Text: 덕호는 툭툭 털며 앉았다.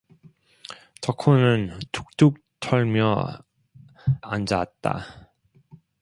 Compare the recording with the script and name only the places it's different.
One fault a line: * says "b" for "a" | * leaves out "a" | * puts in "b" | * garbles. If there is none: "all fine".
all fine